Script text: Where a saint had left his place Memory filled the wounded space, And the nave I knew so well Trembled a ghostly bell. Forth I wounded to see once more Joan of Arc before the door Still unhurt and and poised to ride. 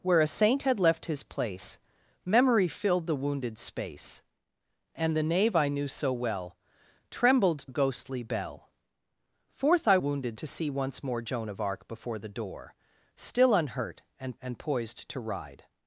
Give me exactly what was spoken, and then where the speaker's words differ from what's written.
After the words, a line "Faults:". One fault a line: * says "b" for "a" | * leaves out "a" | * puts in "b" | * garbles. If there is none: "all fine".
Where a saint had left his place Memory filled the wounded space, And the nave I knew so well Trembled a ghostly bell. Forth I wounded to see once more Joan of Arc before the door Still unhurt and and poised to ride.
Faults:
all fine